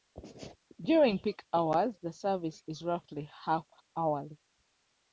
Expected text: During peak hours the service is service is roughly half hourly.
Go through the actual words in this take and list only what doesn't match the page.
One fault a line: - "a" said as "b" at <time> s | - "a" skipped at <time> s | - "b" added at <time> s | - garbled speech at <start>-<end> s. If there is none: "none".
- "service is" skipped at 2.8 s